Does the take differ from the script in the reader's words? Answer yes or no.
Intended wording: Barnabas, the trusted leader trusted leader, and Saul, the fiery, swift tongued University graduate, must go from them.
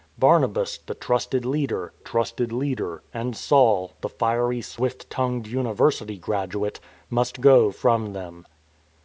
no